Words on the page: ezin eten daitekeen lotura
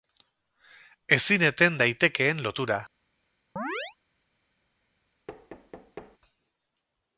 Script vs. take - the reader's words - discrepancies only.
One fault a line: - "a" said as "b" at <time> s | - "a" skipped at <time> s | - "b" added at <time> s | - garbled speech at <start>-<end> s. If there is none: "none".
none